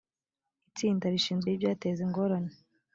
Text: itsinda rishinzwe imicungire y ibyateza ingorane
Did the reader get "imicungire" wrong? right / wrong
wrong